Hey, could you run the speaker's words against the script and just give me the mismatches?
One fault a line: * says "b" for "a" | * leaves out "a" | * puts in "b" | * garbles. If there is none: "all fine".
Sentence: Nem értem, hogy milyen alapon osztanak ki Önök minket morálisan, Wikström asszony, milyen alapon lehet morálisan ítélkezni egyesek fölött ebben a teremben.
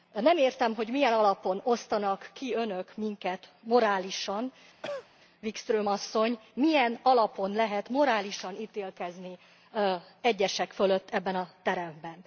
all fine